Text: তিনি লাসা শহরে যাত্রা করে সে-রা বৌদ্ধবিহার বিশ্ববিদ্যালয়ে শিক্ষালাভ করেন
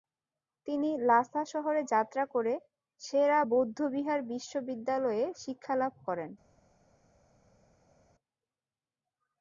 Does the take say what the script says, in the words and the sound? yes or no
yes